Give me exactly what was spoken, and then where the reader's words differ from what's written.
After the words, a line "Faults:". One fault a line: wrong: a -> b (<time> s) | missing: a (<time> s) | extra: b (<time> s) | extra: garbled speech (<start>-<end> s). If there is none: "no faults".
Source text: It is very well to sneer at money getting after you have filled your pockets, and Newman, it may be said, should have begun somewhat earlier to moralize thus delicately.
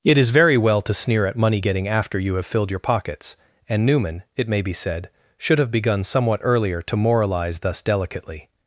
It is very well to sneer at money getting after you have filled your pockets, and Newman, it may be said, should have begun somewhat earlier to moralize thus delicately.
Faults:
no faults